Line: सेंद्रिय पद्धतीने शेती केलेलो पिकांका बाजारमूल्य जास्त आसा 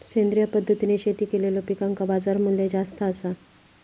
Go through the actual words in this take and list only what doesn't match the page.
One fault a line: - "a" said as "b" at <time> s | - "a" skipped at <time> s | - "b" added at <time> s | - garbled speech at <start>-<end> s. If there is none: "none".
none